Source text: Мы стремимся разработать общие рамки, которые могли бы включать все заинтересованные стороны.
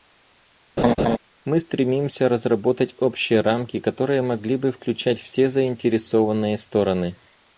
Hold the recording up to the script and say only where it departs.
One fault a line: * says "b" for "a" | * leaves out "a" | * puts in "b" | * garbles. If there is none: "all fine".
all fine